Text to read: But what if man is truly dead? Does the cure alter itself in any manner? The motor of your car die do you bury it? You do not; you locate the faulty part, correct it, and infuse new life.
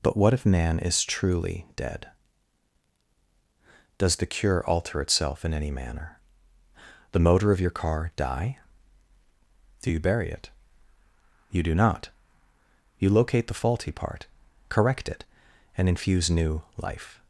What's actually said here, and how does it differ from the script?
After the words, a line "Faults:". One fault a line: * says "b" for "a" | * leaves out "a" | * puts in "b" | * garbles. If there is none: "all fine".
But what if man is truly dead? Does the cure alter itself in any manner? The motor of your car die do you bury it? You do not; you locate the faulty part, correct it, and infuse new life.
Faults:
all fine